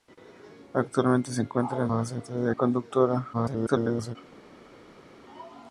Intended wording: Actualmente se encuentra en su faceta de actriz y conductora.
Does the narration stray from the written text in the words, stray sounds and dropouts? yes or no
yes